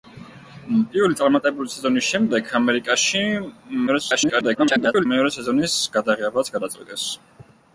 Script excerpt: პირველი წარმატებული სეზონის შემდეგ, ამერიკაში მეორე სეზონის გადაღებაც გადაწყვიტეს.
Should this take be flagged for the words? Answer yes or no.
yes